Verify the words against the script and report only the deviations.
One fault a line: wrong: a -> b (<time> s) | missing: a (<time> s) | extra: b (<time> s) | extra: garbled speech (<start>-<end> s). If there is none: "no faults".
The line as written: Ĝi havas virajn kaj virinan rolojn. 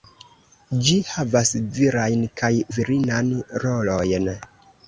no faults